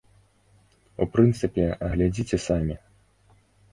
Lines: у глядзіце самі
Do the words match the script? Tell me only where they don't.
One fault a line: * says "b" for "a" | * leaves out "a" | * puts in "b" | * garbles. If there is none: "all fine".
* puts in "прынцыпе"